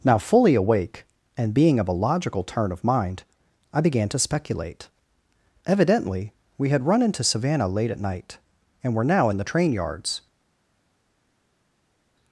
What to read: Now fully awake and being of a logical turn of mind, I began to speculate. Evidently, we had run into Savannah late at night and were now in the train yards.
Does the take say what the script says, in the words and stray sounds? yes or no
yes